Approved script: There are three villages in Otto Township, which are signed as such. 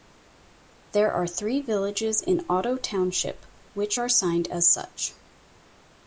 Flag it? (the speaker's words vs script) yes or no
no